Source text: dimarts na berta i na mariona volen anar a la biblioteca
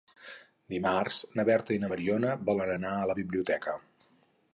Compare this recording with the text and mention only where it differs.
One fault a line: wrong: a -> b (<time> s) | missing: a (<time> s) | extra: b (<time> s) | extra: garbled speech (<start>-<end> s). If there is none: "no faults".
no faults